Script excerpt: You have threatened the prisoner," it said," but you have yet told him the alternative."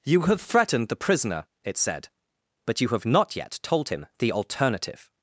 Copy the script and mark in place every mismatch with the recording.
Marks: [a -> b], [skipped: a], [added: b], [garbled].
You have threatened the prisoner," it said," but you have [added: not] yet told him the alternative."